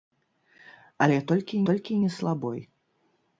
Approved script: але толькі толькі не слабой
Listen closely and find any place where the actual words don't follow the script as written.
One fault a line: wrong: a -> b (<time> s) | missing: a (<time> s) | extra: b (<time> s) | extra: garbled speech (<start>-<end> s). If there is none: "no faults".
no faults